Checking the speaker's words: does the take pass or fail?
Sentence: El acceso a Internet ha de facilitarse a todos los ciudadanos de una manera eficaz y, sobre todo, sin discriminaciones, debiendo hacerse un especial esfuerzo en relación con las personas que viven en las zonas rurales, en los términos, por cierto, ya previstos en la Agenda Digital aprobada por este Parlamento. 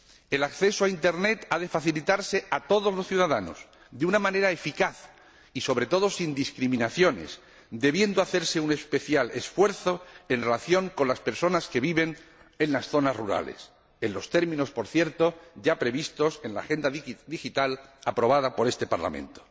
pass